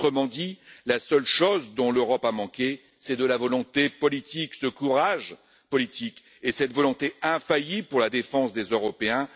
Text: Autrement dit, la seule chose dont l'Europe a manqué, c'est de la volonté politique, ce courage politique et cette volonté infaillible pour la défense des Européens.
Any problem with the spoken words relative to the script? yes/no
no